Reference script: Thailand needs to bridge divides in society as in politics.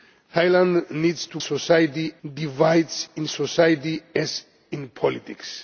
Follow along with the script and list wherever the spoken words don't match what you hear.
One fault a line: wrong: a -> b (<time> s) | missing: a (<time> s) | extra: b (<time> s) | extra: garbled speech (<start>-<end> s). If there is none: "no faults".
wrong: bridge -> society (1.4 s)